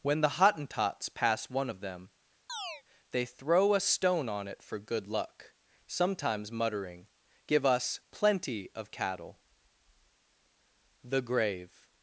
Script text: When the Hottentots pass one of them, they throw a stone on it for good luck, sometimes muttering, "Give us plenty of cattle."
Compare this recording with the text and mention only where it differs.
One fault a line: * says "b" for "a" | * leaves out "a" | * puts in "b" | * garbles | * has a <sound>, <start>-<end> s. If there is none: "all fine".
* has a chirp, 2.5-2.8 s
* puts in "The grave"